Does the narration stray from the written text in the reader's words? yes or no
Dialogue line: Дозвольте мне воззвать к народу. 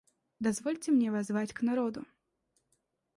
no